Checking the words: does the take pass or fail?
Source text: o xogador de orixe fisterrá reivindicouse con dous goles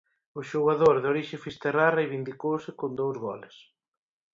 pass